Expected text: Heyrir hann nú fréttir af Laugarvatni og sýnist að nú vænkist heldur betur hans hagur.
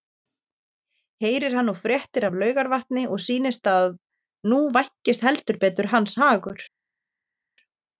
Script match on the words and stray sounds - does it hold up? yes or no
yes